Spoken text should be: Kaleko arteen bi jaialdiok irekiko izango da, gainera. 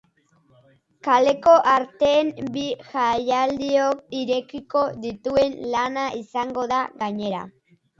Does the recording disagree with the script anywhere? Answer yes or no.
yes